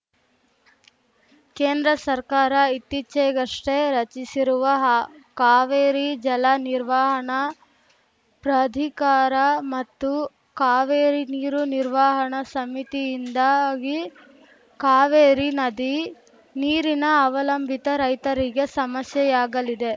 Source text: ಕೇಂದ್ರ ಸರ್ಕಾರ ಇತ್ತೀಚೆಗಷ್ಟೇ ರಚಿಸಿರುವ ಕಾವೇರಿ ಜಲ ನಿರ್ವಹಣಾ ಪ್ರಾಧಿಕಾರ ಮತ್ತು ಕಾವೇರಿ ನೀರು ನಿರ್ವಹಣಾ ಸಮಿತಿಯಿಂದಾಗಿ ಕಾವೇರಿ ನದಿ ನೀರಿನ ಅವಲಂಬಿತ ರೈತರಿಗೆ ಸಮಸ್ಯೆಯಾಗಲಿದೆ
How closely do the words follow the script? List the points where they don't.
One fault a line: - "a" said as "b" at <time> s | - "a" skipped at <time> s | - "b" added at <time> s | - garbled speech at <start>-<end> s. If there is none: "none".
- "ಹಾ" added at 4.8 s